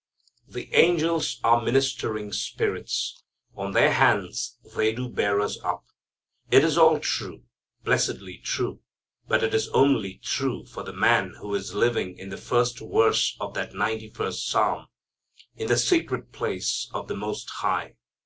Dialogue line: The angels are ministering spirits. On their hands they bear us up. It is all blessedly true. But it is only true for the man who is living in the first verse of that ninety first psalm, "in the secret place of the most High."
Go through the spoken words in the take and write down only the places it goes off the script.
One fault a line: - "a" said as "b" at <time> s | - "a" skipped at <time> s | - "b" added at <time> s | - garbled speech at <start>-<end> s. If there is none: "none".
- "do" added at 5.0 s
- "true" added at 7.0 s